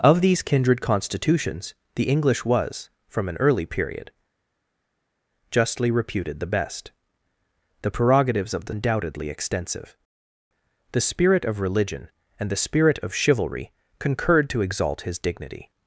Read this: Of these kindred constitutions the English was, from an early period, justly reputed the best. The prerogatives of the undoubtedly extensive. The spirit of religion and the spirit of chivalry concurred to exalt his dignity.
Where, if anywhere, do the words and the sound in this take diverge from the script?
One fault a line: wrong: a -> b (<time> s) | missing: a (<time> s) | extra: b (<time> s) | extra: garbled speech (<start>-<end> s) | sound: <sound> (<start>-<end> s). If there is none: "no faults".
no faults